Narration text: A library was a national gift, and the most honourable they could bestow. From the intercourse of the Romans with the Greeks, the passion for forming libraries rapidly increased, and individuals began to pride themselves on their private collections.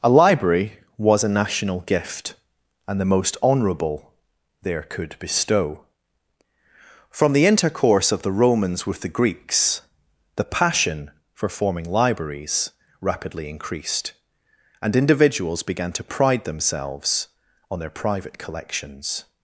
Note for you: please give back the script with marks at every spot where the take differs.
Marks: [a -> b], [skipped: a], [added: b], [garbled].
A library was a national gift, and the most honourable [they -> there] could bestow. From the intercourse of the Romans with the Greeks, the passion for forming libraries rapidly increased, and individuals began to pride themselves on their private collections.